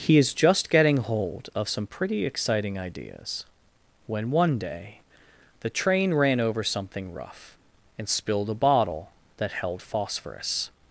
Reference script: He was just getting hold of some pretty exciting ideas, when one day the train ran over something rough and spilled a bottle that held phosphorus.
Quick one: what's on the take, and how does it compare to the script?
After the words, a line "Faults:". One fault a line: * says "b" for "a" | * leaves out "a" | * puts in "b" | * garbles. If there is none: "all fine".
He is just getting hold of some pretty exciting ideas, when one day the train ran over something rough and spilled a bottle that held phosphorus.
Faults:
* says "is" for "was"